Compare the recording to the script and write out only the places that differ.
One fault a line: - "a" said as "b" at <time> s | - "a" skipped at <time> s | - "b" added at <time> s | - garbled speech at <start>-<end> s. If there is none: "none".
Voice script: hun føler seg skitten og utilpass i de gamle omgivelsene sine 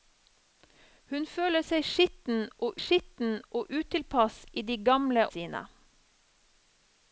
- "skitten og" added at 2.8 s
- "omgivelsene" skipped at 5.2 s